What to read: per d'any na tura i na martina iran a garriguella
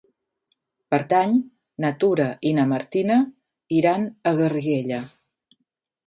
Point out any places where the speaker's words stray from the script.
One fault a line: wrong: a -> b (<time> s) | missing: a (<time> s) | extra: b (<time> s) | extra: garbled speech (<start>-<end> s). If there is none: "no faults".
no faults